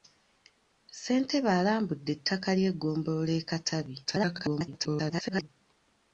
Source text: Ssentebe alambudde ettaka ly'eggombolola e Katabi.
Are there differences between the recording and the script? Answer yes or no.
yes